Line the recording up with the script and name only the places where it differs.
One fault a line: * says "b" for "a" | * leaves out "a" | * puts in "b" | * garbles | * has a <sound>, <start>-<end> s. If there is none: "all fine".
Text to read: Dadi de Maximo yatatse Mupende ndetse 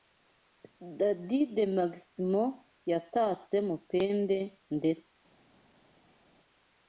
all fine